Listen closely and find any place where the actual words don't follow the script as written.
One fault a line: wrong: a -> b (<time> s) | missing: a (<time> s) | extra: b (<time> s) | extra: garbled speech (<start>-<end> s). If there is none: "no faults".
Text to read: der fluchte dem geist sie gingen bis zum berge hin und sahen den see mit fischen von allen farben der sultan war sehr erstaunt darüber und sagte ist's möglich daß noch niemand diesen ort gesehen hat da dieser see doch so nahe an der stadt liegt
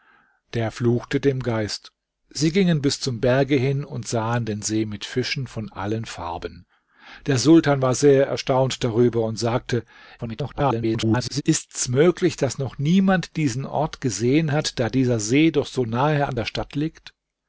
extra: garbled speech (10.2-11.4 s)